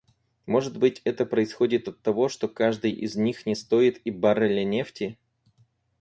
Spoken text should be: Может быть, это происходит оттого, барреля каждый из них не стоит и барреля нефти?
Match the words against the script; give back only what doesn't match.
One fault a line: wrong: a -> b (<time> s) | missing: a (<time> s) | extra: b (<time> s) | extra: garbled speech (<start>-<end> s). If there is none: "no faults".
wrong: барреля -> что (2.3 s)